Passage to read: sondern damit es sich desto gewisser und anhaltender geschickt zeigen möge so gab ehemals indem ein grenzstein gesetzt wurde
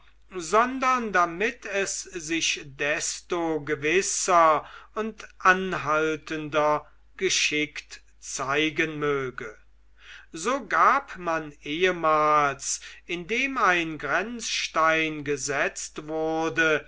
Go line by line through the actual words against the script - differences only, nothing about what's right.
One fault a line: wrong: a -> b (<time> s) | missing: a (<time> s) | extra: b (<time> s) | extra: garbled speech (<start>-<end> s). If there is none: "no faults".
extra: man (11.2 s)